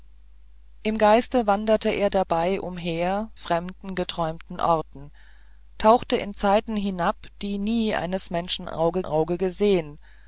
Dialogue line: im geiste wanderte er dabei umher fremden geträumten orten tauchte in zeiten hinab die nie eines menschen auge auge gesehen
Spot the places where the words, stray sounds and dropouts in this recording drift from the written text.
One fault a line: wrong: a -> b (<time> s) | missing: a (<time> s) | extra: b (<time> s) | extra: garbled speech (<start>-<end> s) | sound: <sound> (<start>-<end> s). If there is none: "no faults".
no faults